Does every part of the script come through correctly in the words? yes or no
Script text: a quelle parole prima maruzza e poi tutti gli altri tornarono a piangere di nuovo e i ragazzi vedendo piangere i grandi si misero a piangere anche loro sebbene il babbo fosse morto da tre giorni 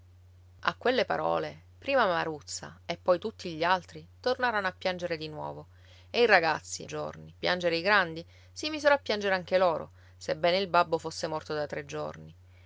no